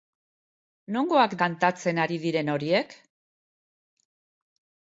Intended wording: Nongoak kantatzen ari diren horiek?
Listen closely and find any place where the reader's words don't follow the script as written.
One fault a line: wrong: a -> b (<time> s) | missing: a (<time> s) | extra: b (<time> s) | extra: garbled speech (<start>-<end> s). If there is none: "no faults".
no faults